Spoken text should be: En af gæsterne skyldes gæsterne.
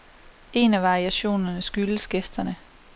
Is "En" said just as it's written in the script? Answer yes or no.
yes